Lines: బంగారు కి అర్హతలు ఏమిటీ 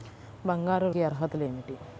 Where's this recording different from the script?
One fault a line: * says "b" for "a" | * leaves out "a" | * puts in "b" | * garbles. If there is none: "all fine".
all fine